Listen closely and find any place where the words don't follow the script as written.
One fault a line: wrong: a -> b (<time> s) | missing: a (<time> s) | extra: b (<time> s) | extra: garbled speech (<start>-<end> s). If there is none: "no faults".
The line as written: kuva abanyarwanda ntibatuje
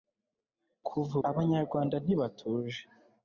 no faults